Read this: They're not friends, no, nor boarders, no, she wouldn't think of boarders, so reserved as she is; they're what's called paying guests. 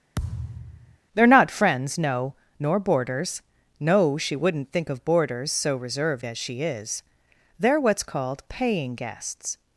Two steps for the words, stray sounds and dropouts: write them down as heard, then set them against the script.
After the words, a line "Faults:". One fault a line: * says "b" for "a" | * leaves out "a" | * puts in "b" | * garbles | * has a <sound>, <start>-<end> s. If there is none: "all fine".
They're not friends, no, nor boarders, no, she wouldn't think of boarders, so reserved as she is; they're what's called paying guests.
Faults:
* has a thud, 0.1-1.0 s